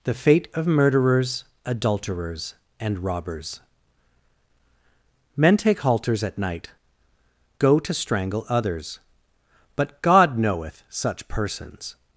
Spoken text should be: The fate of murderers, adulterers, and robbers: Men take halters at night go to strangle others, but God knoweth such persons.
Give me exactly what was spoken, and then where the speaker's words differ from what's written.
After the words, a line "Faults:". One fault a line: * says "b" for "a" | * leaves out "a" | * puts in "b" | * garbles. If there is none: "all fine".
The fate of murderers, adulterers, and robbers: Men take halters at night go to strangle others, but God knoweth such persons.
Faults:
all fine